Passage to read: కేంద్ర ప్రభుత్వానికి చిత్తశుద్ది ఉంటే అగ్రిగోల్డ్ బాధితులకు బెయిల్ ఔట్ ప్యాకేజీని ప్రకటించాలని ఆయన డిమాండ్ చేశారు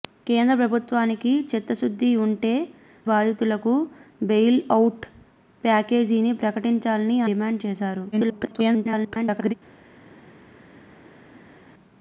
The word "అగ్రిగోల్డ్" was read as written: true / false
false